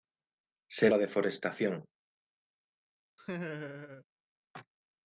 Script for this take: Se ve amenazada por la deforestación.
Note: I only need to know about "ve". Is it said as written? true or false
false